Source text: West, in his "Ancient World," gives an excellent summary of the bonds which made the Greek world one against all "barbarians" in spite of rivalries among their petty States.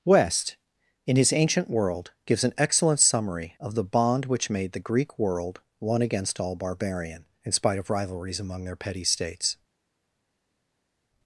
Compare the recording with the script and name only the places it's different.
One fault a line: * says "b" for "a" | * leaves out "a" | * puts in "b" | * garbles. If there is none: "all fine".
* says "bond" for "bonds"
* says "barbarian" for "barbarians"